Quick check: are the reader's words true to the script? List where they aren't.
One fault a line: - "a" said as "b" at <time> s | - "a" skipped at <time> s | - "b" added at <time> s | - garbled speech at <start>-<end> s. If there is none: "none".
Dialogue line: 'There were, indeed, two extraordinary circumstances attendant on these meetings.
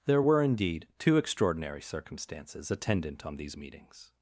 none